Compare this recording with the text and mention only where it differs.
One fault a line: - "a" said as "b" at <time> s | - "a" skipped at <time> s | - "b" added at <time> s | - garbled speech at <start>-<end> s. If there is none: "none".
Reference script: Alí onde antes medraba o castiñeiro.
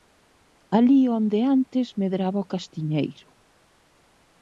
none